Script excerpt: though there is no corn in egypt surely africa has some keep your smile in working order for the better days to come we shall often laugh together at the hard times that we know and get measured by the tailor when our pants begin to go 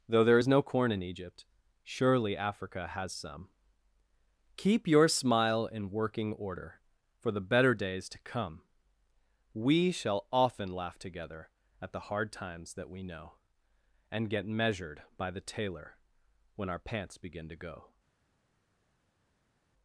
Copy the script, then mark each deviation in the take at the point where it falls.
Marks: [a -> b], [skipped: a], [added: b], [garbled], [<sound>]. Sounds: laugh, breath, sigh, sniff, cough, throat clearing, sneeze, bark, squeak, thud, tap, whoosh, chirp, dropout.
though there is no corn in egypt surely africa has some keep your smile in working order for the better days to come we shall often laugh together at the hard times that we know and get measured by the tailor when our pants begin to go